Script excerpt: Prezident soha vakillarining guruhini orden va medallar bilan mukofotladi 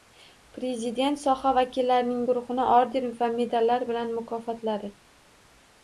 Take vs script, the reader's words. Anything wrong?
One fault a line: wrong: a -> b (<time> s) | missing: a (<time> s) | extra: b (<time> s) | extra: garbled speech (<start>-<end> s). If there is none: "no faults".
no faults